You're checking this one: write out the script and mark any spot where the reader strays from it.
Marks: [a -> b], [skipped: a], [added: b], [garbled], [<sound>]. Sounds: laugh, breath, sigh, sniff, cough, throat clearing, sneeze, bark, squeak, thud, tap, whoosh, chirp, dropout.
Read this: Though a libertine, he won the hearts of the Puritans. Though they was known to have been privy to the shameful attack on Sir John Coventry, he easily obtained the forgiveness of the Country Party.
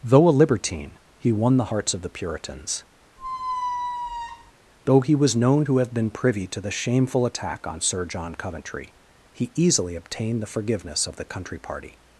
Though a libertine, he won the hearts of the Puritans. [squeak] Though [they -> he] was known to have been privy to the shameful attack on Sir John Coventry, he easily obtained the forgiveness of the Country Party.